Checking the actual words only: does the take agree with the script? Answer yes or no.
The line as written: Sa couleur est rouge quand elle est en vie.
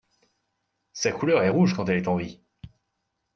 yes